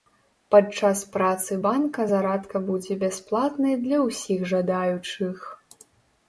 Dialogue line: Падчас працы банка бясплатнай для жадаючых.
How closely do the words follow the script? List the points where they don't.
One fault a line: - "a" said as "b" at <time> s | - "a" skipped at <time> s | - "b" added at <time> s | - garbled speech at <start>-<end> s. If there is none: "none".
- "зарадка будзе" added at 2.1 s
- "ўсіх" added at 4.1 s